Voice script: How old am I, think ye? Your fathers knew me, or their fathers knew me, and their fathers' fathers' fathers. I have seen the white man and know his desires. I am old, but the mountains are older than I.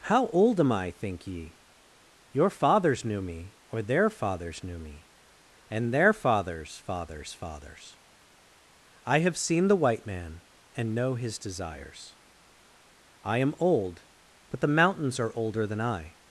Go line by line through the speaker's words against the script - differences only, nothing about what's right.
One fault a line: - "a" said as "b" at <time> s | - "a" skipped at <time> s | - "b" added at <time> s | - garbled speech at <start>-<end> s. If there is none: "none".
none